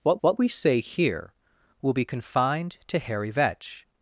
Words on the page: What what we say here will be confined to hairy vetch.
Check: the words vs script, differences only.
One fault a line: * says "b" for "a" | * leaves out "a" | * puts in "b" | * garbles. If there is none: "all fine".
all fine